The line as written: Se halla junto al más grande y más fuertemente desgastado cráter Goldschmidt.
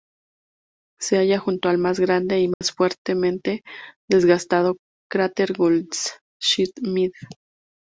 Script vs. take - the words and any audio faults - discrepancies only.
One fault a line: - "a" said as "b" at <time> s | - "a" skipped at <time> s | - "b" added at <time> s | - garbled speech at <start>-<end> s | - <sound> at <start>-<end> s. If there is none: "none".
- dropout at 2.5-2.6 s